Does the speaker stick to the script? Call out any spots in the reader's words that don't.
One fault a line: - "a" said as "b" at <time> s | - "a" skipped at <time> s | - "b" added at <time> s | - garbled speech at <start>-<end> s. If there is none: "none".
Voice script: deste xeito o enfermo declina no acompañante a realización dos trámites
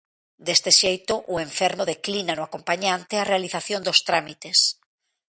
none